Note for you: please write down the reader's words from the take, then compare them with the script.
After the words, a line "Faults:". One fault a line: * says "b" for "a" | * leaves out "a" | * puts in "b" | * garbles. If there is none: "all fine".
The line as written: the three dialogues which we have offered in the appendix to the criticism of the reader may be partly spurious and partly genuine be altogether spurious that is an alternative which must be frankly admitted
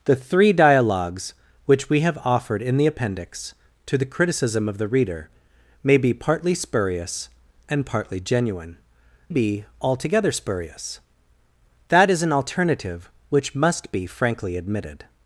the three dialogues which we have offered in the appendix to the criticism of the reader may be partly spurious and partly genuine be altogether spurious that is an alternative which must be frankly admitted
Faults:
all fine